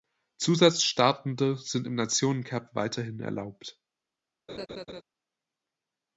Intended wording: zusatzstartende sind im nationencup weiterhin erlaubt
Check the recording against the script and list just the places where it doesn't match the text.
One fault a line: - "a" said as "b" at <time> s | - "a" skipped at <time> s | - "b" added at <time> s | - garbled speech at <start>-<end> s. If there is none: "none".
none